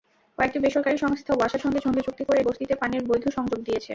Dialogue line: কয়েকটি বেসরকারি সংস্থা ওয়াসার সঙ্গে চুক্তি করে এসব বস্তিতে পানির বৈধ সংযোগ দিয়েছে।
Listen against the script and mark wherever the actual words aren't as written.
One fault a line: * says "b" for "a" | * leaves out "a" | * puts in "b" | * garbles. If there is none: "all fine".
* puts in "সঙ্গে"
* leaves out "এসব"